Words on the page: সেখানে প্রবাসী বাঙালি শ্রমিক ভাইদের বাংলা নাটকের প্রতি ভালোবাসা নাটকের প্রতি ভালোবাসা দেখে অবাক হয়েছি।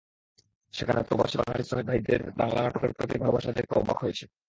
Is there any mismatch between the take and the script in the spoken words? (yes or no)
yes